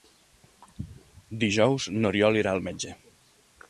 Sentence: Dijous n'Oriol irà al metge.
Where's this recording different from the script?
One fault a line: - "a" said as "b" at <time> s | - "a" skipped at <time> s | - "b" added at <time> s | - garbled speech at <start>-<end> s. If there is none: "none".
none